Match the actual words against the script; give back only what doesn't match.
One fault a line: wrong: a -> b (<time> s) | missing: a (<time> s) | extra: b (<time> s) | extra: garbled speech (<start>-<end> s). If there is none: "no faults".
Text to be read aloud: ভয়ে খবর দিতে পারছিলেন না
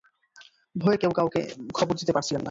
extra: কেউ কাউকে (1.0 s)